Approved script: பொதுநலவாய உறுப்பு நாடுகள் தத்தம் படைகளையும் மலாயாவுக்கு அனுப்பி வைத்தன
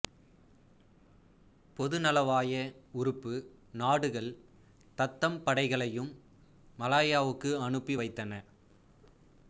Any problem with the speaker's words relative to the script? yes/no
no